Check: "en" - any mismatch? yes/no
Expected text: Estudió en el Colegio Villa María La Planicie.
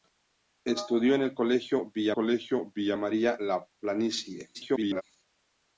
no